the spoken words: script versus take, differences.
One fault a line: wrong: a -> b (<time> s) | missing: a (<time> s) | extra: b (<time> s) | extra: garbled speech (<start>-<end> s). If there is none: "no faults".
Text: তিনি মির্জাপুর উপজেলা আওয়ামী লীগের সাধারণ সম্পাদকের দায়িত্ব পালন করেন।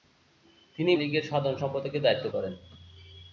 missing: মির্জাপুর উপজেলা আওয়ামী (0.9 s)
missing: পালন (2.2 s)